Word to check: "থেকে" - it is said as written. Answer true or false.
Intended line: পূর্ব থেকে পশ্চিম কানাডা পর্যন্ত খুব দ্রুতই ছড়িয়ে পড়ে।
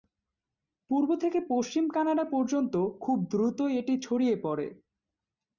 true